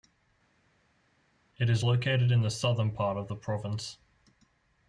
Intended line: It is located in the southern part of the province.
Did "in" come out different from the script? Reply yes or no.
no